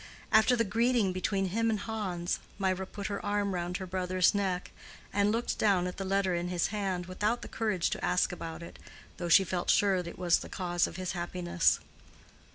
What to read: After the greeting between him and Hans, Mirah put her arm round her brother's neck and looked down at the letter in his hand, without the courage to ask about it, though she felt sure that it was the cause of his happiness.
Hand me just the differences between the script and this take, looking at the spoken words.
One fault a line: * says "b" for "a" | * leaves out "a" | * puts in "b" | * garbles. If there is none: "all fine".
* leaves out "that"